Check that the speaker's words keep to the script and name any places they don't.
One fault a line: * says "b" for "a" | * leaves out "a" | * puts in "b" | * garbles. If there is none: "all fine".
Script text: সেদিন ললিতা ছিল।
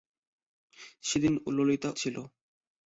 all fine